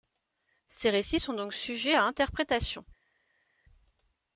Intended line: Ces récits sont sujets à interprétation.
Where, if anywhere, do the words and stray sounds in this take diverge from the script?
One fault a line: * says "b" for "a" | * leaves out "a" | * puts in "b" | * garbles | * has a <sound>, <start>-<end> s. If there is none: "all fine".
* puts in "donc"